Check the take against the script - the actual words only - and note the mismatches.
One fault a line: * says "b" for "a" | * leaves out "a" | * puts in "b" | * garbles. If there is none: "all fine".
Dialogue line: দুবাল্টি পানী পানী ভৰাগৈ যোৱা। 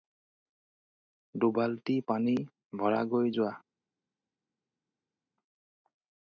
* leaves out "পানী"